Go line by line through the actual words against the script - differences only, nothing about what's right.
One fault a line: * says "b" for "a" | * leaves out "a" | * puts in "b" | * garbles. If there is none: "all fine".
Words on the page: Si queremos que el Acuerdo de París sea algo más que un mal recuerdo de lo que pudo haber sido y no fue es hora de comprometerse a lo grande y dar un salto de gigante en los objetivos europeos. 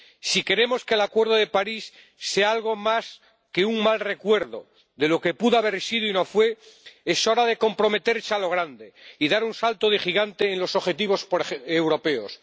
all fine